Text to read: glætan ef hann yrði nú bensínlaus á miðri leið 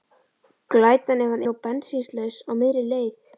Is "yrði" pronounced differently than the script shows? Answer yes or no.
yes